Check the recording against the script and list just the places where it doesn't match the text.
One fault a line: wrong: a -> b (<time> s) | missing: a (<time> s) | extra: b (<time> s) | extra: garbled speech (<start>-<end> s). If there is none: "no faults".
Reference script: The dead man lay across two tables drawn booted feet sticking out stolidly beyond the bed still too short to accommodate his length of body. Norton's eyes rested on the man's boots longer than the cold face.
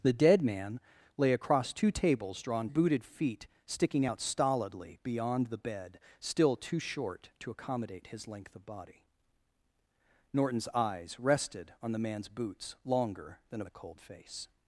no faults